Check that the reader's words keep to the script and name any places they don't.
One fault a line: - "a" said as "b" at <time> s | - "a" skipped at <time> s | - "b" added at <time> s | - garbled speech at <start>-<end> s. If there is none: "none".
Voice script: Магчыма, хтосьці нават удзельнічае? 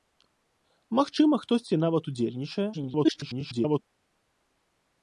- garbled speech at 2.7-3.8 s